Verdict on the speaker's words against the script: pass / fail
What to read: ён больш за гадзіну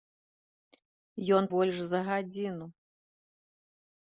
pass